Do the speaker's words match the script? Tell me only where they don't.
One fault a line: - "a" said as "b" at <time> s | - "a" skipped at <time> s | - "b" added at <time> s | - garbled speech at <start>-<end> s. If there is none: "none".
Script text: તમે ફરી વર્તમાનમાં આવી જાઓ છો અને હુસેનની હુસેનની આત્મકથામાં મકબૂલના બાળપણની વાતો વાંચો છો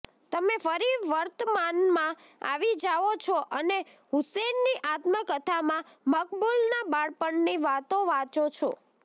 - "હુસેનની" skipped at 4.7 s